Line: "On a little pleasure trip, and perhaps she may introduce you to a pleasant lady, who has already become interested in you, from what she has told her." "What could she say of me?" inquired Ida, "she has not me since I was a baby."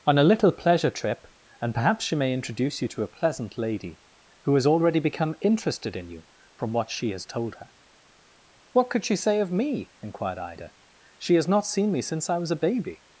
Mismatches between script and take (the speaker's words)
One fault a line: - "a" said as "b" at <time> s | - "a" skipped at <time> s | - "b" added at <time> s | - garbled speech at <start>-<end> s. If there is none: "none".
- "seen" added at 11.7 s